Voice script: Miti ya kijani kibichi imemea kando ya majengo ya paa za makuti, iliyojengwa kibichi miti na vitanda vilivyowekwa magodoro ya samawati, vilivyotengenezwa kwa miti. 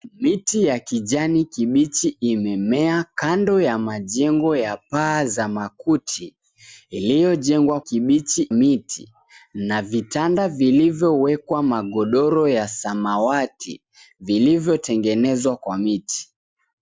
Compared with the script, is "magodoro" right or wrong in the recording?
right